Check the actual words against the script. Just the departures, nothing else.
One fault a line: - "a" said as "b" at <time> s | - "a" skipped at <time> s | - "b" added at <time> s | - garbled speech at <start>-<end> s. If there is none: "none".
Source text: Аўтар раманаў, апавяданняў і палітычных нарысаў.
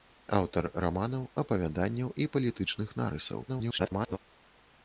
- garbled speech at 3.5-4.2 s